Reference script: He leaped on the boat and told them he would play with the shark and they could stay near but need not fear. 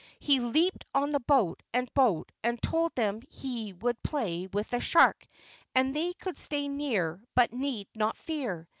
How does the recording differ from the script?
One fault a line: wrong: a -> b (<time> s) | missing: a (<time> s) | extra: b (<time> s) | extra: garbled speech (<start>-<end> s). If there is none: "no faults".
extra: boat and (1.9 s)